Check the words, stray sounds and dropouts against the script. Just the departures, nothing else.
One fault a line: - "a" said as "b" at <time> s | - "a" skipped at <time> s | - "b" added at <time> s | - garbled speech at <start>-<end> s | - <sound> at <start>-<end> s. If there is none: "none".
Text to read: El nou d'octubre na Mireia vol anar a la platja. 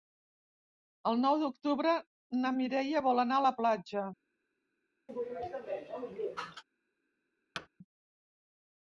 - sneeze at 5.1-6.6 s
- thud at 7.5-7.7 s